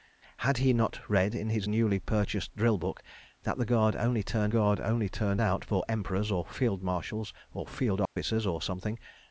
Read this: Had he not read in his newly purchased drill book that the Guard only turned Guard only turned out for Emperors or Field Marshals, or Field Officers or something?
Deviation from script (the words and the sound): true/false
true